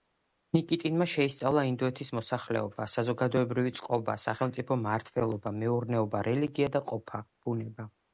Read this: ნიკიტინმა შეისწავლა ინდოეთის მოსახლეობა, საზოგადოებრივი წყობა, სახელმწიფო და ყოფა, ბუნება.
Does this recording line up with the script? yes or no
no